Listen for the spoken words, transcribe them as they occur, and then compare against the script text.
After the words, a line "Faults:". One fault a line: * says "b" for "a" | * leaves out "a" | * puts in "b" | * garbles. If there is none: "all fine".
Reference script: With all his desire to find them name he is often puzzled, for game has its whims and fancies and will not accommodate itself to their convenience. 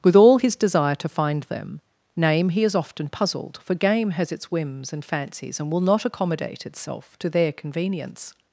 With all his desire to find them name he is often puzzled, for game has its whims and fancies and will not accommodate itself to their convenience.
Faults:
all fine